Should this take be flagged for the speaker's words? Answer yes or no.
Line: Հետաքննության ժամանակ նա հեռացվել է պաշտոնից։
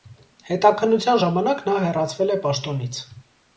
no